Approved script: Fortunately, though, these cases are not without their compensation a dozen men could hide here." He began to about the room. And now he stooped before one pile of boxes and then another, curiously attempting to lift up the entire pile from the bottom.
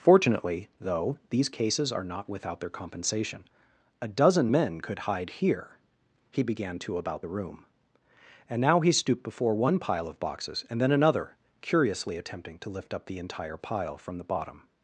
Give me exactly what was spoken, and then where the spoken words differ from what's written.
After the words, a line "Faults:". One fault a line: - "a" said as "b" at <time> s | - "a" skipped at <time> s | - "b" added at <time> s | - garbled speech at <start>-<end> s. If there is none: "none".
Fortunately, though, these cases are not without their compensation a dozen men could hide here." He began to about the room. And now he stooped before one pile of boxes and then another, curiously attempting to lift up the entire pile from the bottom.
Faults:
none